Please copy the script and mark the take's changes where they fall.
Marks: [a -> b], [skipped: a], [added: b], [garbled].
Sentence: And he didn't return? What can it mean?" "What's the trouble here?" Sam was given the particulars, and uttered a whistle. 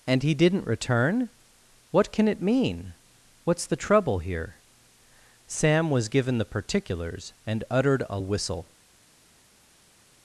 And he didn't return? What can it mean?" "What's the trouble here?" Sam was given the particulars, and uttered a whistle.